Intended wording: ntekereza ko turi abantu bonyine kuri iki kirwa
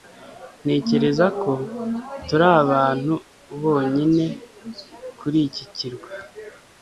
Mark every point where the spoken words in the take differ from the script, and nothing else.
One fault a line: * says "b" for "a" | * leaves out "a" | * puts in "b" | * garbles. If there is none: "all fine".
all fine